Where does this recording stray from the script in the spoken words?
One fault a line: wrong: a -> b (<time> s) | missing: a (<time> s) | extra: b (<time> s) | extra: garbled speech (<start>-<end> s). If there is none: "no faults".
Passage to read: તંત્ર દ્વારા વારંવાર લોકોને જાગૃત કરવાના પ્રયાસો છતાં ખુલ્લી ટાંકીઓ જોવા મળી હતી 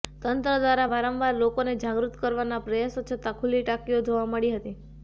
no faults